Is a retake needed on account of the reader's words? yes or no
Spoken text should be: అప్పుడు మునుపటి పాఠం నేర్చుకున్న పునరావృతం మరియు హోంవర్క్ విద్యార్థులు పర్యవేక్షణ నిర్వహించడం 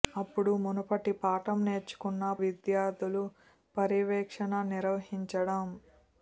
yes